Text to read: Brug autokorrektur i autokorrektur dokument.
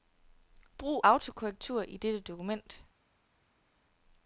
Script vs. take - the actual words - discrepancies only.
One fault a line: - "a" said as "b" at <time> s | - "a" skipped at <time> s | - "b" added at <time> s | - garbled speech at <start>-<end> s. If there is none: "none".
- "autokorrektur" said as "dette" at 2.0 s